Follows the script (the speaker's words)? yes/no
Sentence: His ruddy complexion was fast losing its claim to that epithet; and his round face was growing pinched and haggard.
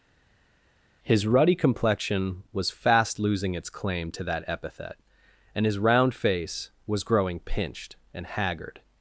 yes